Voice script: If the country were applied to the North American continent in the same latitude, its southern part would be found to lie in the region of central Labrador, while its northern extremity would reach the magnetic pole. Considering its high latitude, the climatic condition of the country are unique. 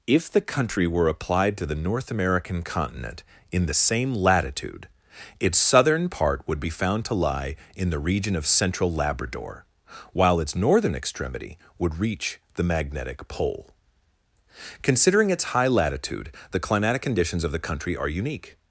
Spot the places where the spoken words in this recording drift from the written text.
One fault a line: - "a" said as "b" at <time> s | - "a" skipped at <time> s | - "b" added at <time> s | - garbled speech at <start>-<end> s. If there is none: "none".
- "condition" said as "conditions" at 17.0 s